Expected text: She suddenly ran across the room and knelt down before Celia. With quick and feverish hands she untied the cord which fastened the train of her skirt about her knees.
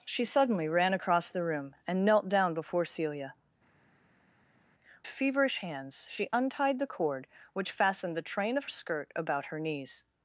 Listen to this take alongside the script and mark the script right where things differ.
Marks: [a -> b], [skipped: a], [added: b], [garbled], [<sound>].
She suddenly ran across the room and knelt down before Celia. [skipped: With quick and] feverish hands she untied the cord which fastened the train of [skipped: her] skirt about her knees.